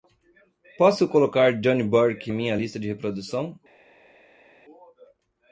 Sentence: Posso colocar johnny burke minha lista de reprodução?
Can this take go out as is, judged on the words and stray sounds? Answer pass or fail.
pass